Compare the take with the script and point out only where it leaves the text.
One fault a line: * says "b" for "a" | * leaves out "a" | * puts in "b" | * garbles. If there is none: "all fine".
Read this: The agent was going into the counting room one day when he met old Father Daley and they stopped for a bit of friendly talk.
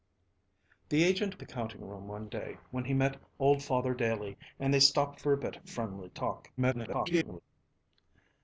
* leaves out "was going into"
* garbles